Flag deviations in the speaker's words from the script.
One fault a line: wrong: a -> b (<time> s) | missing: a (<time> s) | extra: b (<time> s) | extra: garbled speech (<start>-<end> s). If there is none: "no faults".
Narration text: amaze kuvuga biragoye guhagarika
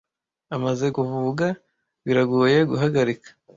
no faults